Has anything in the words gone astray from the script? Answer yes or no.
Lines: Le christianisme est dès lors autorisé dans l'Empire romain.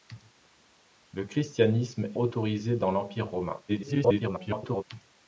yes